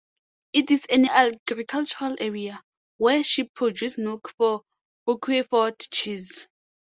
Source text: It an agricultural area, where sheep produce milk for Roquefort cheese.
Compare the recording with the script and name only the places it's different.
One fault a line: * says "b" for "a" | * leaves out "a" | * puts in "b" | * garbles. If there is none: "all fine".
* puts in "is"